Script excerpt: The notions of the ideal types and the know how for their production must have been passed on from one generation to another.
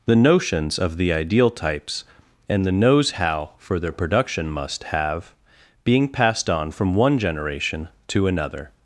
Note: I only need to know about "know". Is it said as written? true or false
false